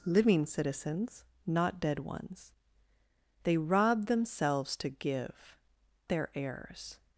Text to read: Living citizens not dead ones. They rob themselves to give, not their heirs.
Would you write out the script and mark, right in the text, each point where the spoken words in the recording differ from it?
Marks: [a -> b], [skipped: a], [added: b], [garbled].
Living citizens not dead ones. They rob themselves to give, [skipped: not] their heirs.